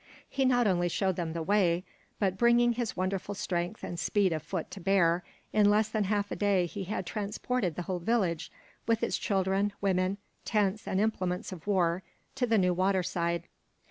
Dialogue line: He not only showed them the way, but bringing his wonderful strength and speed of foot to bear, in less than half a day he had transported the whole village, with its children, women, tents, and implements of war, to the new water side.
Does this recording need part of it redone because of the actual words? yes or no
no